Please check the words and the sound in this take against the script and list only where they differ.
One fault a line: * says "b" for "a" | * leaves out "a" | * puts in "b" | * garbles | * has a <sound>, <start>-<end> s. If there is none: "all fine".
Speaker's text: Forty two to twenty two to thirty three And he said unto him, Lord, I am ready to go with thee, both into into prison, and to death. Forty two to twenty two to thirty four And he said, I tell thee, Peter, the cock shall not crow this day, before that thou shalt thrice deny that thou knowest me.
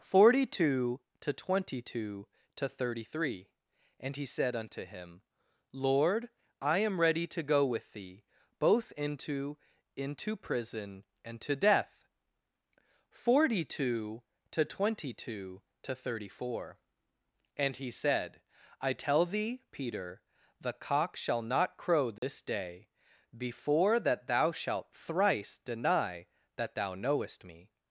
* has a dropout, 22.2-22.2 s